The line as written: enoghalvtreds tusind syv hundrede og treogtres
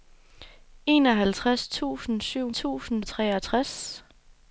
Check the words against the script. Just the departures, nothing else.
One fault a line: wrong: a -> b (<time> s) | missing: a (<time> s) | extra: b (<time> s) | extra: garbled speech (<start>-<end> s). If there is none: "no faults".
wrong: hundrede -> tusind (2.5 s)